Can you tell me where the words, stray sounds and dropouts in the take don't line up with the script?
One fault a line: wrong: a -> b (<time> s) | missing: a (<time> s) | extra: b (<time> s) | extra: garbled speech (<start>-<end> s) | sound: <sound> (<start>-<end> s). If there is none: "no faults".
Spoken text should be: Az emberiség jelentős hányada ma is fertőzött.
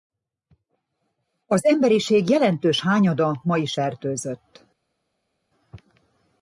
no faults